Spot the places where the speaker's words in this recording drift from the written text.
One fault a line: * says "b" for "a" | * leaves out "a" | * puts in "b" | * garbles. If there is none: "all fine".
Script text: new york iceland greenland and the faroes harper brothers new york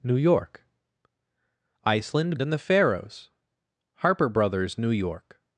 * leaves out "greenland"